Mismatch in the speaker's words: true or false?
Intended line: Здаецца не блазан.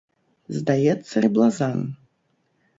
false